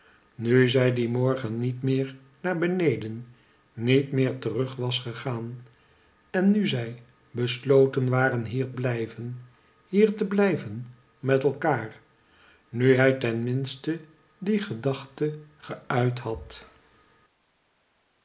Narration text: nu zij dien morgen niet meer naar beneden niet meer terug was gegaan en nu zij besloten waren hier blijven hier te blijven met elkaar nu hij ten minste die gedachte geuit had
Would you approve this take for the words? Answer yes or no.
yes